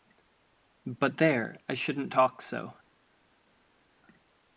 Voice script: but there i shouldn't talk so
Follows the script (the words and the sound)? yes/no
yes